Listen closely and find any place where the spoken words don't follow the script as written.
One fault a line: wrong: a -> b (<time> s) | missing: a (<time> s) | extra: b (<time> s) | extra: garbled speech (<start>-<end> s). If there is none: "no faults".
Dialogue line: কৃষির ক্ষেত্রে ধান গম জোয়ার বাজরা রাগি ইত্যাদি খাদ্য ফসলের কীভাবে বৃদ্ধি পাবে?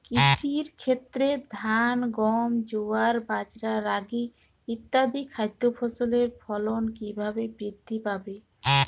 extra: ফলন (6.4 s)